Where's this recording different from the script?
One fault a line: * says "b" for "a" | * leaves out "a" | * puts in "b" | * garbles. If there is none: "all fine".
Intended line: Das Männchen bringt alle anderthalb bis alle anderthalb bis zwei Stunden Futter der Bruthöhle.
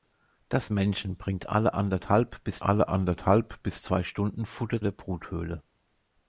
all fine